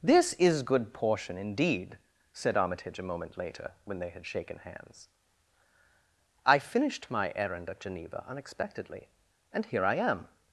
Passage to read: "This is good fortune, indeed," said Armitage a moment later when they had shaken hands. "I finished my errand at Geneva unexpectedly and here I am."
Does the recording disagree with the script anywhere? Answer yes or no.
yes